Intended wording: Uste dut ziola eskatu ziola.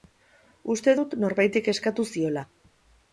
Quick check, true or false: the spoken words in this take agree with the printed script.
false